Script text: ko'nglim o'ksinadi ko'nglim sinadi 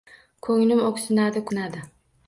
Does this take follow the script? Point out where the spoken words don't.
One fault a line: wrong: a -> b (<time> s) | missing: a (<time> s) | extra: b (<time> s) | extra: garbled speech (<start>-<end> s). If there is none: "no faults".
missing: ko'nglim (1.4 s)